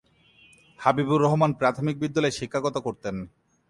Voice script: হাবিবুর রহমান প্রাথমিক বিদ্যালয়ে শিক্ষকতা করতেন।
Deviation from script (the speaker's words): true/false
false